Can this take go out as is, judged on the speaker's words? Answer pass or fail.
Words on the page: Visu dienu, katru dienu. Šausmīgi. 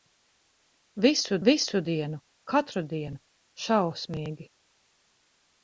fail